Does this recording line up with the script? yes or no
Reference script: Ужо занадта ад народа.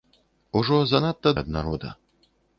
yes